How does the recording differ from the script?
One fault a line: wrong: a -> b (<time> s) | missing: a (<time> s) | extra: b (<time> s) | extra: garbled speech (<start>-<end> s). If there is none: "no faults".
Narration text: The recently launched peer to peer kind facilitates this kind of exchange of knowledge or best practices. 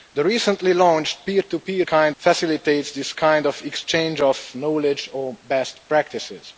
no faults